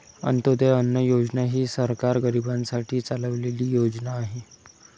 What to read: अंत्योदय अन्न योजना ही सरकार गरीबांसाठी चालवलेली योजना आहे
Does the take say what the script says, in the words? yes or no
yes